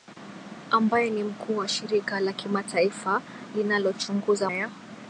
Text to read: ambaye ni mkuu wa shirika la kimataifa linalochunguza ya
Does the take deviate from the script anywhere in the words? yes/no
no